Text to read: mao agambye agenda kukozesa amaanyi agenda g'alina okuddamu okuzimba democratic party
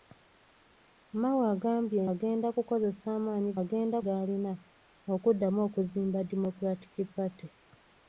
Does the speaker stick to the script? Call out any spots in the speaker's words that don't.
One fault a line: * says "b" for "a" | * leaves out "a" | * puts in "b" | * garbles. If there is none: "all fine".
all fine